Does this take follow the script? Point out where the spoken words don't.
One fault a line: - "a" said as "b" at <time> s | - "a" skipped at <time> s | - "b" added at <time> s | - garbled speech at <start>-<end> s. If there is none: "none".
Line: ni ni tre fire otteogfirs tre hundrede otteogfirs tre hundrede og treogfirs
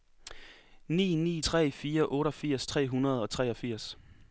- "otteogfirs tre hundrede" skipped at 3.2 s